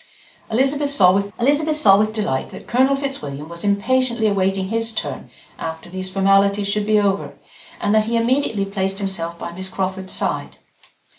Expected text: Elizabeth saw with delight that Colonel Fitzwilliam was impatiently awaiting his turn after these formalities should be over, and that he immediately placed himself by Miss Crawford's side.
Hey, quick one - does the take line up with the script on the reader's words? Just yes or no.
no